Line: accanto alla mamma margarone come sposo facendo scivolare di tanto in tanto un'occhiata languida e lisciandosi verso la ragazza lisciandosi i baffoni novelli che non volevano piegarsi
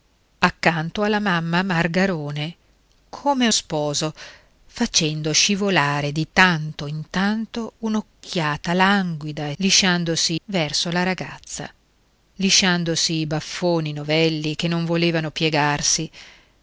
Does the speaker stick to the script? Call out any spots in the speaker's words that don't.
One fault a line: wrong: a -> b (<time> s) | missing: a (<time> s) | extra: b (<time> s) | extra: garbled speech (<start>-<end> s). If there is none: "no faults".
no faults